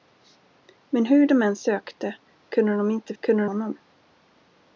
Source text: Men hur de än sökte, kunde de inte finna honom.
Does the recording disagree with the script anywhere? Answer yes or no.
yes